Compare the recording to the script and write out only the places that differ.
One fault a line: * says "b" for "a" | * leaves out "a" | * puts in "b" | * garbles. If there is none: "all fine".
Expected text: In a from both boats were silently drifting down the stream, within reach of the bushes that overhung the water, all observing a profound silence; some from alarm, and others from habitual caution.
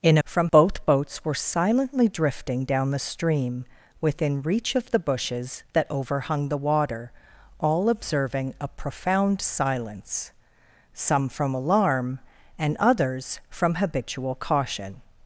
all fine